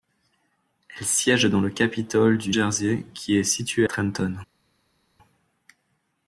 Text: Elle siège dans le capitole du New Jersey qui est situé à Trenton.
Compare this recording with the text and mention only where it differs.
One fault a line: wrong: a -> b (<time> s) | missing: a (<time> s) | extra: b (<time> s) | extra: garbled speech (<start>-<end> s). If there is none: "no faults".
missing: New (2.5 s)
missing: à (3.8 s)